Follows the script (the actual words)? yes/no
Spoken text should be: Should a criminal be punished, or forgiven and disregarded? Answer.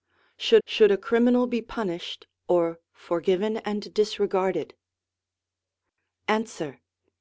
no